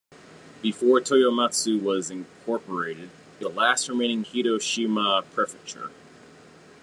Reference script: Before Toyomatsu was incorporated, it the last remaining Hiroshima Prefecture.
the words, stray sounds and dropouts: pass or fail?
pass